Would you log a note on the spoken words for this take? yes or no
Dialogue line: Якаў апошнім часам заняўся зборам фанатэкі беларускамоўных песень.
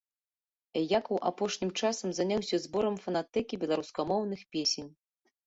no